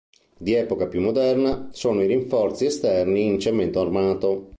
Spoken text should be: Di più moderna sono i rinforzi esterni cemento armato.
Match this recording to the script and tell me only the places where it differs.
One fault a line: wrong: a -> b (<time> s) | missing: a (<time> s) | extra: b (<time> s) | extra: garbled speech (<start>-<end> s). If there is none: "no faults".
extra: epoca (0.6 s)
extra: in (3.2 s)